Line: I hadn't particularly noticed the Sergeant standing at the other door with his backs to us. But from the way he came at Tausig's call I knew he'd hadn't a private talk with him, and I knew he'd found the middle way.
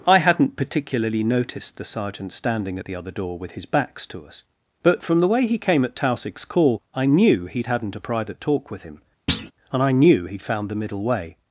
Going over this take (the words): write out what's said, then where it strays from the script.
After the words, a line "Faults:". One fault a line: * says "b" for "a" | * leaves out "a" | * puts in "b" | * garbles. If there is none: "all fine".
I hadn't particularly noticed the Sergeant standing at the other door with his backs to us. But from the way he came at Tausig's call I knew he'd hadn't a private talk with him, and I knew he'd found the middle way.
Faults:
all fine